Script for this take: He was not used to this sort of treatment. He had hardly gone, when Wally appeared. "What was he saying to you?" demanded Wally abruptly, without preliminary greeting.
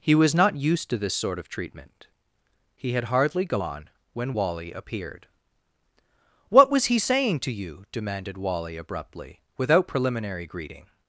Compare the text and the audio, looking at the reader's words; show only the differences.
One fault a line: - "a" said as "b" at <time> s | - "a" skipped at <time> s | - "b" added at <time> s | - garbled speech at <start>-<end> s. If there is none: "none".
none